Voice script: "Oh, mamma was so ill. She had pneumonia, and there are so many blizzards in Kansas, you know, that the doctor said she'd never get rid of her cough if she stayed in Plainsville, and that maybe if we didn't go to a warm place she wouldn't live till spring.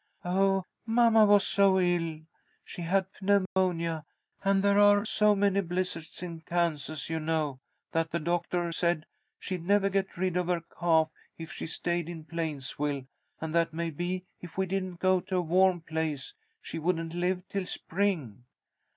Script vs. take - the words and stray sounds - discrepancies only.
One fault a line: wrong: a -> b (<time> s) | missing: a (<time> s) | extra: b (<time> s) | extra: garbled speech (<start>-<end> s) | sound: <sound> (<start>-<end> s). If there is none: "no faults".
sound: dropout (3.5-3.6 s)